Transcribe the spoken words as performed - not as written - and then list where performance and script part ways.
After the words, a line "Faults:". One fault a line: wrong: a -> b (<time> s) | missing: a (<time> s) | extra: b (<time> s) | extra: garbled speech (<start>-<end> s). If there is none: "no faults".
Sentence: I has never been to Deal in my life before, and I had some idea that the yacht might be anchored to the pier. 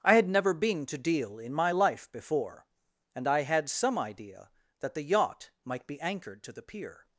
I had never been to Deal in my life before, and I had some idea that the yacht might be anchored to the pier.
Faults:
wrong: has -> had (0.1 s)